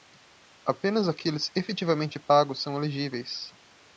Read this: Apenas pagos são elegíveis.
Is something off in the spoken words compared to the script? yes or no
yes